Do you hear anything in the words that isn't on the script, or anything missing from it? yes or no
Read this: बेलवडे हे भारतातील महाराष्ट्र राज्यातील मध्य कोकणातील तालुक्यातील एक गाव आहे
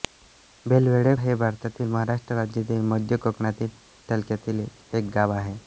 no